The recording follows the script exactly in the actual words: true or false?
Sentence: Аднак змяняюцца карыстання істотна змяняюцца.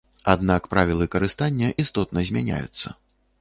false